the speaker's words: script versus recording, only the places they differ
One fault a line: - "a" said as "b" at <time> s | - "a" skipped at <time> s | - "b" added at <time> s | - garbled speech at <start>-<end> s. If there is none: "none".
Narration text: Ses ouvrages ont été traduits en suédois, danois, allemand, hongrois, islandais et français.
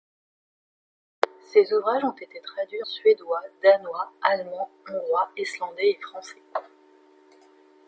- "en" skipped at 2.8 s